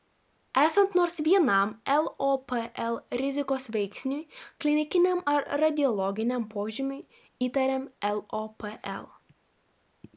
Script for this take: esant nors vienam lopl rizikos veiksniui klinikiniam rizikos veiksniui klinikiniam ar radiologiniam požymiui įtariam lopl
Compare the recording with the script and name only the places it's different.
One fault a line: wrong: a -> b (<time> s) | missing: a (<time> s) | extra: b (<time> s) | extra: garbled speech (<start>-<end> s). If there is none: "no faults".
missing: rizikos veiksniui klinikiniam (5.2 s)